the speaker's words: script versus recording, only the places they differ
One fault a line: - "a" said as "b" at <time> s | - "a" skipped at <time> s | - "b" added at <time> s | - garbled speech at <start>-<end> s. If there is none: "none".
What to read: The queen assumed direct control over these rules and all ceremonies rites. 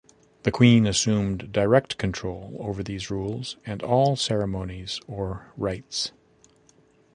- "or" added at 5.1 s